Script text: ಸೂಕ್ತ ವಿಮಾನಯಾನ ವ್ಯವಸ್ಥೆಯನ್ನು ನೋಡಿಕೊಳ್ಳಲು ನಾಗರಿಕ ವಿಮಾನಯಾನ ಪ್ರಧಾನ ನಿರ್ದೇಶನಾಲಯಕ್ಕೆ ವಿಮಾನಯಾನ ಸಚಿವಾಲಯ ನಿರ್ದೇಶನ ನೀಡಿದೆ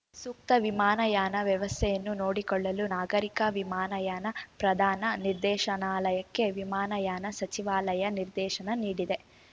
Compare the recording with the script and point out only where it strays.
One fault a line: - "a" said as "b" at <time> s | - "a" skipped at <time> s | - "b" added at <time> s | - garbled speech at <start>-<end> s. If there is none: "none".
none